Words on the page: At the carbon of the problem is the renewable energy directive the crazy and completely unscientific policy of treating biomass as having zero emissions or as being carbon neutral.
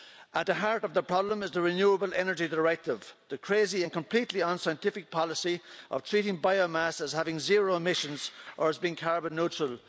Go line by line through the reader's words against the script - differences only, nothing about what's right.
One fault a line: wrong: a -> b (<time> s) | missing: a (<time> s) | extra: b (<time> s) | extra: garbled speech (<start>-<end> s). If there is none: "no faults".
wrong: carbon -> heart (0.5 s)